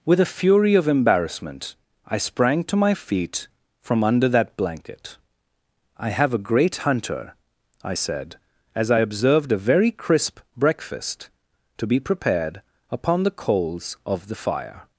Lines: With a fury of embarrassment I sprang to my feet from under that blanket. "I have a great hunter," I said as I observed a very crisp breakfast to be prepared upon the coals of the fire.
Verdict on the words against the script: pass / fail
pass